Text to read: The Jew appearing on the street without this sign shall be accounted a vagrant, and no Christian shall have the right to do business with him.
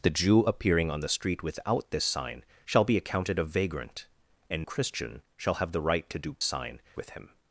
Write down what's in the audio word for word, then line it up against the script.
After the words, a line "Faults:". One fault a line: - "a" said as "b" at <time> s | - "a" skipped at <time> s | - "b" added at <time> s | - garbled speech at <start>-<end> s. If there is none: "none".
The Jew appearing on the street without this sign shall be accounted a vagrant, and Christian shall have the right to do sign with him.
Faults:
- "no" skipped at 4.6 s
- "business" said as "sign" at 6.4 s